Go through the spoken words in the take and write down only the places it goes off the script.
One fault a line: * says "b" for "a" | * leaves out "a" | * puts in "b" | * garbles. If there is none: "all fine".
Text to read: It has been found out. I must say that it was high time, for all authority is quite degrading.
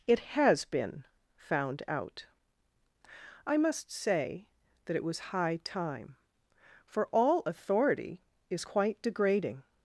all fine